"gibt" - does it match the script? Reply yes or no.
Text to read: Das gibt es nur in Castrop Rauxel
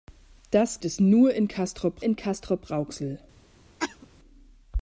no